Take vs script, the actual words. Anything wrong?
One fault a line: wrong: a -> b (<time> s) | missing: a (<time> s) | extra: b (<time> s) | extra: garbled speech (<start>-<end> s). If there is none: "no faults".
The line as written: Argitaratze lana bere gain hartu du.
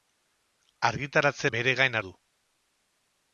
missing: lana (1.5 s)
missing: hartu (2.0 s)